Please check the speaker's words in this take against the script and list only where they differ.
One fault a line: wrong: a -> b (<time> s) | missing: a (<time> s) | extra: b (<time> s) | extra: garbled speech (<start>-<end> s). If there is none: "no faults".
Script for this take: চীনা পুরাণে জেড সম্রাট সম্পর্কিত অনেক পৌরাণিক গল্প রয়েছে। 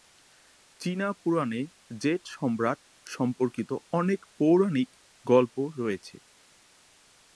no faults